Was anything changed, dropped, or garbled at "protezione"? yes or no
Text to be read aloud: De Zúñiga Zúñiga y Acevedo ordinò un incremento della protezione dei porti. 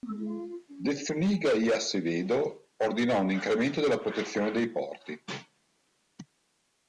no